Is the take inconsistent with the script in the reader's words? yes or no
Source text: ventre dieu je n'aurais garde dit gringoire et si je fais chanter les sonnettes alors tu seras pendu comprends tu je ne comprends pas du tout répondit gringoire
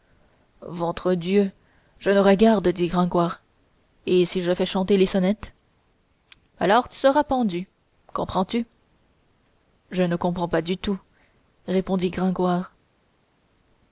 no